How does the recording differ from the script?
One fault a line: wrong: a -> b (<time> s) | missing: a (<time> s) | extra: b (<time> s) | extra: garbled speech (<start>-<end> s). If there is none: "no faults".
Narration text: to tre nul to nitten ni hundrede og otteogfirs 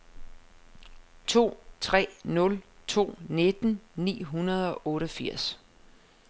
no faults